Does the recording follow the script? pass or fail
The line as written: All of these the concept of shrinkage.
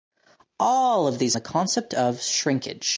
pass